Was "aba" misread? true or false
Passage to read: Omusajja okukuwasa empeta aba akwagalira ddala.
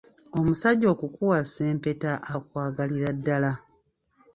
true